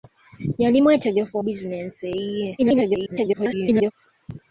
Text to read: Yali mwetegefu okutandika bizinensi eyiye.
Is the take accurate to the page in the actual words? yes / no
no